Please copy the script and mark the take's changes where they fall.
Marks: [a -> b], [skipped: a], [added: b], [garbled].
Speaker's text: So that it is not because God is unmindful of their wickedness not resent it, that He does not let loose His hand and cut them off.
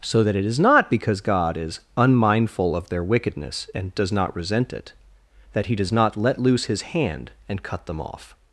So that it is not because God is unmindful of their wickedness [added: and does] not resent it, that He does not let loose His hand and cut them off.